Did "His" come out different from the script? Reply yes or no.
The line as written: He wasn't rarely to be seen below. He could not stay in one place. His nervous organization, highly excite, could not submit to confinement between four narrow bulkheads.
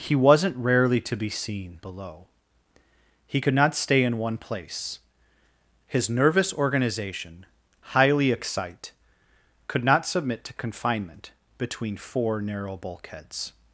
no